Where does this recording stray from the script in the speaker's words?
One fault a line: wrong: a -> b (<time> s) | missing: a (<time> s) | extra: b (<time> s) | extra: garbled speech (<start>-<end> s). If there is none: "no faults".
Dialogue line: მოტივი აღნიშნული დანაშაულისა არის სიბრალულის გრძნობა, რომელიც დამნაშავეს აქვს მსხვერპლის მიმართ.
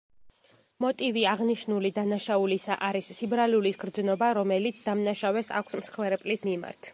no faults